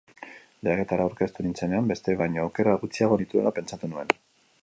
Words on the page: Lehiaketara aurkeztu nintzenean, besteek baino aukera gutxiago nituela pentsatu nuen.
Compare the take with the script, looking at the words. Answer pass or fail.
pass